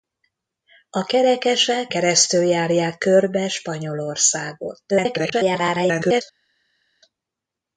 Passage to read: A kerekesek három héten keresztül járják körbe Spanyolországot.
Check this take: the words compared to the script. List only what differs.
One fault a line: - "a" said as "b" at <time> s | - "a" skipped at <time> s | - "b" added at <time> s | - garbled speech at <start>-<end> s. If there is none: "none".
- "három héten" skipped at 1.9 s
- garbled speech at 4.9-6.2 s